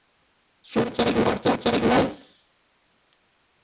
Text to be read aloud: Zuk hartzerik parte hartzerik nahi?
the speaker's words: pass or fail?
pass